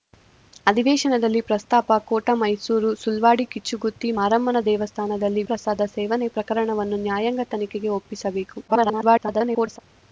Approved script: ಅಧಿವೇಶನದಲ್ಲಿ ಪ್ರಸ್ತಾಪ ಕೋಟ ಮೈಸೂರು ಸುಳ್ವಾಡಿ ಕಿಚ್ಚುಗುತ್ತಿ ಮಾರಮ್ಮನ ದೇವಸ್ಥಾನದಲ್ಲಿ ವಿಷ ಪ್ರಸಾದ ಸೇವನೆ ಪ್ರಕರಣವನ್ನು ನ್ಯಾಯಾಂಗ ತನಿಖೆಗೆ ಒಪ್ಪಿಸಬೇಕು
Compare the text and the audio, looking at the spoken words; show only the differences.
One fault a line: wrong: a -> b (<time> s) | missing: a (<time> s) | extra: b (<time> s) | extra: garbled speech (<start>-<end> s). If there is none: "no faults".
missing: ವಿಷ (5.4 s)
extra: garbled speech (8.7-9.8 s)